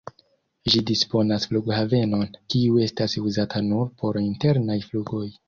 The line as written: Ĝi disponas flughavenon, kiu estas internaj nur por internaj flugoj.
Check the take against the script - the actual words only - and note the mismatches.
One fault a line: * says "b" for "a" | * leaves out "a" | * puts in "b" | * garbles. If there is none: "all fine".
* says "uzata" for "internaj"